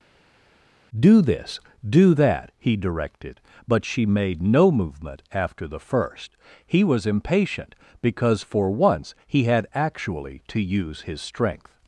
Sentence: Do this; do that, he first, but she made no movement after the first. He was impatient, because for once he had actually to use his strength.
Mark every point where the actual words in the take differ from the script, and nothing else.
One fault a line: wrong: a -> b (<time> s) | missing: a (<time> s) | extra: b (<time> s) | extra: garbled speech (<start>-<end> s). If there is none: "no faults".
wrong: first -> directed (2.8 s)